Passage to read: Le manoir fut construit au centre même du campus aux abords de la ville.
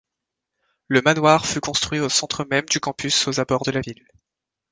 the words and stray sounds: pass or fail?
pass